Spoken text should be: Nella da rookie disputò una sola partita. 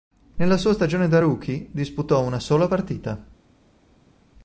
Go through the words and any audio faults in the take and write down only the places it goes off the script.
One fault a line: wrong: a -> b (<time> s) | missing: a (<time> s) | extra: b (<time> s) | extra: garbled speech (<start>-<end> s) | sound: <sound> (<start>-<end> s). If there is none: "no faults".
extra: sua stagione (0.6 s)